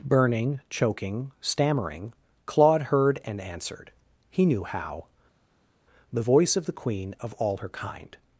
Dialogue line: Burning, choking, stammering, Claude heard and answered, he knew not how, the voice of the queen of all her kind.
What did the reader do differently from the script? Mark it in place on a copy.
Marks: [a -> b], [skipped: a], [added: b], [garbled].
Burning, choking, stammering, Claude heard and answered, he knew [skipped: not] how, the voice of the queen of all her kind.